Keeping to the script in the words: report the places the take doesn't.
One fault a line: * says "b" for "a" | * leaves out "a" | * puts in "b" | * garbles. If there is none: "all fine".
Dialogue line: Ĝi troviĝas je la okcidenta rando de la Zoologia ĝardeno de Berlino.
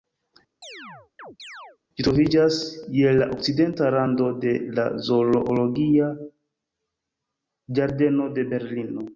all fine